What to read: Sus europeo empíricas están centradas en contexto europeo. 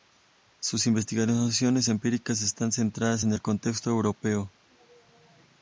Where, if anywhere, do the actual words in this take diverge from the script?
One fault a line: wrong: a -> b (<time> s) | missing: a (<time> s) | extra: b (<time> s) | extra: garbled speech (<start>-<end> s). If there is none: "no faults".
wrong: europeo -> investigaciones (0.9 s)
extra: el (3.3 s)